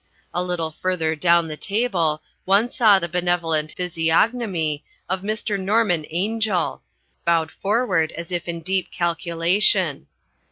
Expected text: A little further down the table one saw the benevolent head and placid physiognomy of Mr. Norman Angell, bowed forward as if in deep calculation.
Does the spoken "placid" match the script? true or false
false